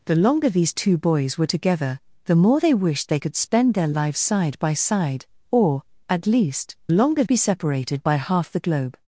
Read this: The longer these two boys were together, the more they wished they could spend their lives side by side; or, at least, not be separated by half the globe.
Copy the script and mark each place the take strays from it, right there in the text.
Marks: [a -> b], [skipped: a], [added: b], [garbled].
The longer these two boys were together, the more they wished they could spend their lives side by side; or, at least, [not -> longer] be separated by half the globe.